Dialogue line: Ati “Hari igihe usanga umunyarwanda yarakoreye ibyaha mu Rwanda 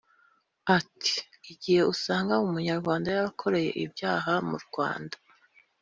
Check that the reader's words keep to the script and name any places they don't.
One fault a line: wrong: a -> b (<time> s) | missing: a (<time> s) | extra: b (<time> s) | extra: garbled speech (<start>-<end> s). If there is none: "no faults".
missing: Hari (1.1 s)